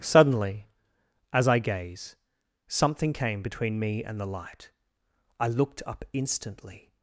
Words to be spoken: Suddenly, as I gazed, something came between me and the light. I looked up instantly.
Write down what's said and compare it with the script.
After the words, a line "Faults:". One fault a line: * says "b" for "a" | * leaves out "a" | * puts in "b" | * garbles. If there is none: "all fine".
Suddenly, as I gaze, something came between me and the light. I looked up instantly.
Faults:
* says "gaze" for "gazed"